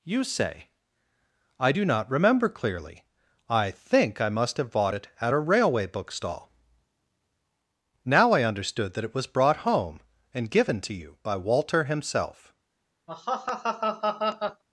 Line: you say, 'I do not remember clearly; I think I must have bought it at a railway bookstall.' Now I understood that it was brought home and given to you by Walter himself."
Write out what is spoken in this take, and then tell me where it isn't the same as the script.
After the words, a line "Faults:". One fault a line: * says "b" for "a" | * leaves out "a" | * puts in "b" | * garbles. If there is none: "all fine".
you say, 'I do not remember clearly; I think I must have bought it at a railway bookstall.' Now I understood that it was brought home and given to you by Walter himself."
Faults:
all fine